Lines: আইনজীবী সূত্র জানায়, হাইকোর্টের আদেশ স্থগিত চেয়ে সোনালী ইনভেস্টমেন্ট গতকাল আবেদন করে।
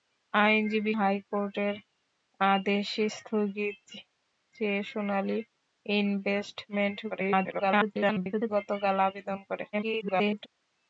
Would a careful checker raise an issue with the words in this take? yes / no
yes